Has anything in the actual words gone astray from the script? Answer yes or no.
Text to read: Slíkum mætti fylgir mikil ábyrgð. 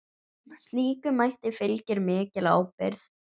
no